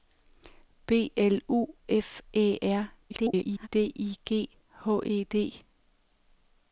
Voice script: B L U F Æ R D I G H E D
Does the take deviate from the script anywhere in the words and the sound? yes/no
yes